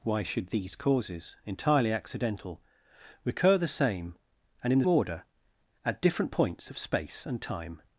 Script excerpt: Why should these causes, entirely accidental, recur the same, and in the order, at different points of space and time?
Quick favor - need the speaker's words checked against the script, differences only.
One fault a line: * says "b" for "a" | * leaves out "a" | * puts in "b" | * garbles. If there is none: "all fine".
all fine